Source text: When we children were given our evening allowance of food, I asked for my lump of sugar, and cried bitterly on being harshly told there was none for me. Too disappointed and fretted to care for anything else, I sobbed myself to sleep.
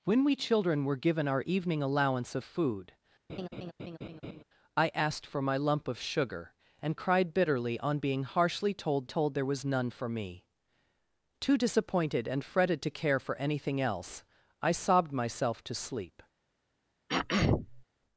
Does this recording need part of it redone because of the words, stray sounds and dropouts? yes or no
yes